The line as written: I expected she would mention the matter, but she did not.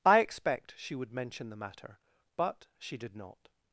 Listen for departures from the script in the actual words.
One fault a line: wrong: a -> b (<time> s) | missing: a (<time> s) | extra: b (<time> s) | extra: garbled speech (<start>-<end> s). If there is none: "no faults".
wrong: expected -> expect (0.2 s)